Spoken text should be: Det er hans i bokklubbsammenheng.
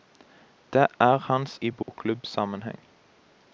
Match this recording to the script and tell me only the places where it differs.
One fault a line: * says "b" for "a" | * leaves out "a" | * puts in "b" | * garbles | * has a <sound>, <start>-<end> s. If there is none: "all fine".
* has a dropout, 1.8-1.9 s